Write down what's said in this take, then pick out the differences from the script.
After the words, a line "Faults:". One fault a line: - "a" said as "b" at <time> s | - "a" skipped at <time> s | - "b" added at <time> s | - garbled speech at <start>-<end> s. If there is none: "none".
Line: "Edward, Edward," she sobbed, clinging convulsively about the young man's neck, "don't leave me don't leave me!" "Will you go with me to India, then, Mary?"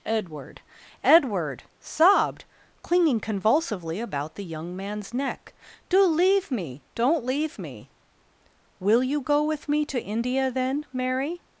"Edward, Edward," sobbed, clinging convulsively about the young man's neck, "do leave me don't leave me!" "Will you go with me to India, then, Mary?"
Faults:
- "she" skipped at 1.6 s
- "don't" said as "do" at 5.9 s